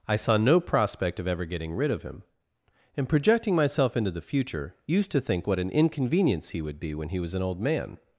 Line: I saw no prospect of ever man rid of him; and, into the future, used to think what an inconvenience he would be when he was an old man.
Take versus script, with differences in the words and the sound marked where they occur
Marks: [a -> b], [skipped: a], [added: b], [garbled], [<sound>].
I saw no prospect of ever [man -> getting] rid of him; and, [added: projecting myself] into the future, used to think what an inconvenience he would be when he was an old man.